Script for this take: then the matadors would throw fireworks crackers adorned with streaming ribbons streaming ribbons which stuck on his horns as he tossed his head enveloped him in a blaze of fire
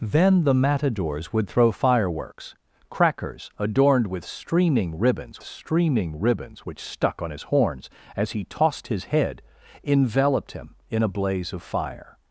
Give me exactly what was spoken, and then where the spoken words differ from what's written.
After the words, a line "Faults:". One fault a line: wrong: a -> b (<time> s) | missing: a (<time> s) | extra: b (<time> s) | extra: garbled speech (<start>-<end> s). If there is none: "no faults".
then the matadors would throw fireworks crackers adorned with streaming ribbons streaming ribbons which stuck on his horns as he tossed his head enveloped him in a blaze of fire
Faults:
no faults